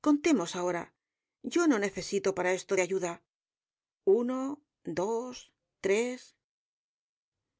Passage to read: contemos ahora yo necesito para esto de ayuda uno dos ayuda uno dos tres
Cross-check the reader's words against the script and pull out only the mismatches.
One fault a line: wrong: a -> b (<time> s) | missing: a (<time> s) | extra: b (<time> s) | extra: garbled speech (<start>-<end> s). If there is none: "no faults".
extra: no (1.7 s)
missing: ayuda uno dos (5.5 s)